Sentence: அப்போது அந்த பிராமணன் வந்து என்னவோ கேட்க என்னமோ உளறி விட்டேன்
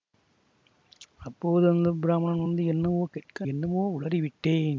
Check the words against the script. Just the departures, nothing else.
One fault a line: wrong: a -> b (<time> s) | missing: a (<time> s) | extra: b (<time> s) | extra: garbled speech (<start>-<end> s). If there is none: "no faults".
no faults